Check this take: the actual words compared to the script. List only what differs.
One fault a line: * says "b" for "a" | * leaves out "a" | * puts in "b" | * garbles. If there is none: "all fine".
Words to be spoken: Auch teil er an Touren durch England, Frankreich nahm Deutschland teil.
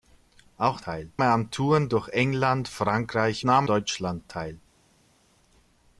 all fine